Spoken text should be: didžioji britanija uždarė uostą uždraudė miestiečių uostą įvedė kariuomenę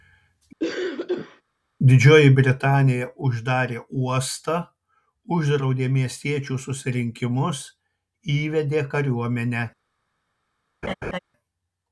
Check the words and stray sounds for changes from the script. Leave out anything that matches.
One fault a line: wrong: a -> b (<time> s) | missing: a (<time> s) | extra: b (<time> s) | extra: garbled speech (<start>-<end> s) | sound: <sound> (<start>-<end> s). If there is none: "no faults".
sound: cough (0.6-1.4 s)
wrong: uostą -> susirinkimus (6.7 s)
sound: laugh (10.8-11.2 s)